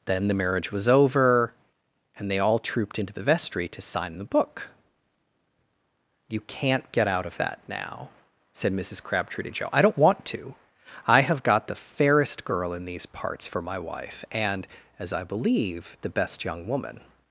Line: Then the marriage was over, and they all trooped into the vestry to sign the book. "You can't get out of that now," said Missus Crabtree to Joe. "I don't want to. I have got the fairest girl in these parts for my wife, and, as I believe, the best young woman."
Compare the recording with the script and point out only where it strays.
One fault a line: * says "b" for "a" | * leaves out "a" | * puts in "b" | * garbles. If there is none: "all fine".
all fine